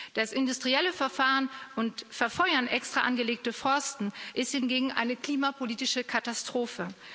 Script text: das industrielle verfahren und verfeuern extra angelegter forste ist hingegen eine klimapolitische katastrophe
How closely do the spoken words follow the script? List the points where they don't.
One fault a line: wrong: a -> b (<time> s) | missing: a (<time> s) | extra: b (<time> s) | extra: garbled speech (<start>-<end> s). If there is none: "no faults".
no faults